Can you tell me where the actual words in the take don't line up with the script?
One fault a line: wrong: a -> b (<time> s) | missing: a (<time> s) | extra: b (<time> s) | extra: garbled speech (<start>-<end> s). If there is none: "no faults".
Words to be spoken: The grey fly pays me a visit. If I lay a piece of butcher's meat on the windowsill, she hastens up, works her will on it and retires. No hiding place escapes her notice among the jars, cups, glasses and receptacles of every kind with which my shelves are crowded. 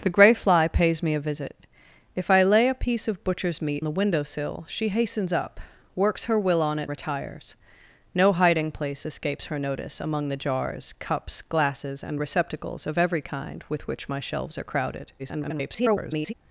missing: on (3.9 s)
missing: and (6.9 s)
extra: garbled speech (15.2-16.3 s)